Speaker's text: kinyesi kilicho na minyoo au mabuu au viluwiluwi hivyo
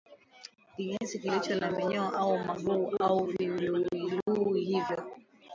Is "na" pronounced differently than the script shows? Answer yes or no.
no